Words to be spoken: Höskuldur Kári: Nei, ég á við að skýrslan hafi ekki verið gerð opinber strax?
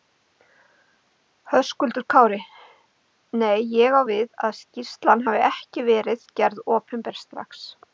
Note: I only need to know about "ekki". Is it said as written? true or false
true